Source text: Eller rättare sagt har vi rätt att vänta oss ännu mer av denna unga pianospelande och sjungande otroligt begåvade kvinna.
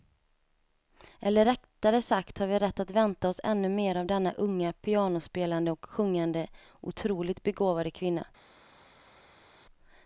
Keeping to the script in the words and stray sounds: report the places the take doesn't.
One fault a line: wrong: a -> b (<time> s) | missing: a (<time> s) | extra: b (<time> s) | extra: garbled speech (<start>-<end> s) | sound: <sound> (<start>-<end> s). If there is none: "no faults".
no faults